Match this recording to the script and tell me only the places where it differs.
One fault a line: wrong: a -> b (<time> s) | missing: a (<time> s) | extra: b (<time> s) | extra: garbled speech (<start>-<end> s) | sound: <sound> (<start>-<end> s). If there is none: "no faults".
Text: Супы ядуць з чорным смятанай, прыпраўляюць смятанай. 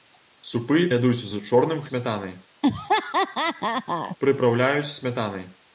sound: laugh (2.6-4.2 s)